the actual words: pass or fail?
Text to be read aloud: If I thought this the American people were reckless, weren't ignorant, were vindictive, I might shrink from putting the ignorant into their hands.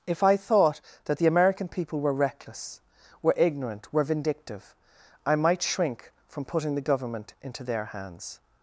fail